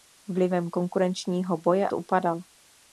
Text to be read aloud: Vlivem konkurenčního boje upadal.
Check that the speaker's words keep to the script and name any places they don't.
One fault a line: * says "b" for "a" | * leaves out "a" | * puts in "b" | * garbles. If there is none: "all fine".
all fine